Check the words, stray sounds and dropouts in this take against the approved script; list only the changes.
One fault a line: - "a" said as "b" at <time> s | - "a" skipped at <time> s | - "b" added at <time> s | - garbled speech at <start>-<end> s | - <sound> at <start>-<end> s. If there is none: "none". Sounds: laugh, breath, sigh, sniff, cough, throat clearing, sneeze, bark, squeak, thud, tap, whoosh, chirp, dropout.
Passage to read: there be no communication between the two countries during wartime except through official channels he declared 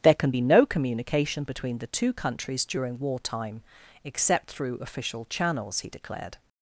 - "can" added at 0.1 s